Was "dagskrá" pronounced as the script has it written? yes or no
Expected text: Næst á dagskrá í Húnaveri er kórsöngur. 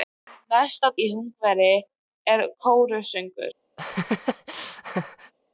no